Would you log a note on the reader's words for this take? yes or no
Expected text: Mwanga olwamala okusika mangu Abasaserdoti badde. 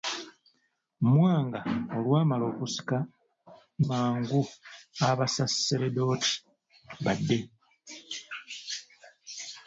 no